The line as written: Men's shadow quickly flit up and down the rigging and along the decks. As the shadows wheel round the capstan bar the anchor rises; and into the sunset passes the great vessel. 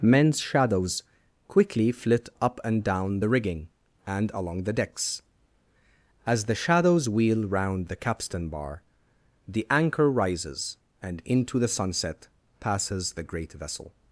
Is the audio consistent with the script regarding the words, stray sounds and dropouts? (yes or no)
no